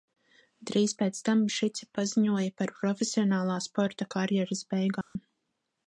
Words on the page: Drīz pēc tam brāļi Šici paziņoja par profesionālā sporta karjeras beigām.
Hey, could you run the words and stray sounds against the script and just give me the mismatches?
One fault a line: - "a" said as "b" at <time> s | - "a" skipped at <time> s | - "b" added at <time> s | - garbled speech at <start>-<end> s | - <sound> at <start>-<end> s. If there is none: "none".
- "brāļi" skipped at 1.4 s
- dropout at 5.0-5.2 s